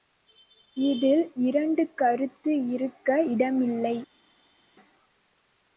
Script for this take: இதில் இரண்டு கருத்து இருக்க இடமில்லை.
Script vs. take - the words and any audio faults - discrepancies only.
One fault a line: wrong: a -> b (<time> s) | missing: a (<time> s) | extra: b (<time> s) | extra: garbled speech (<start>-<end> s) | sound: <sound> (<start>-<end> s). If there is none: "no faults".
no faults